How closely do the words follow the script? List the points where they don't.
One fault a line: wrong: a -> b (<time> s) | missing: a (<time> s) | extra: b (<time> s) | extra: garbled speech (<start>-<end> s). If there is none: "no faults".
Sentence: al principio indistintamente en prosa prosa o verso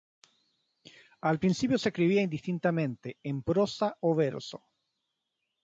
extra: se escribía (1.8 s)
missing: prosa (4.0 s)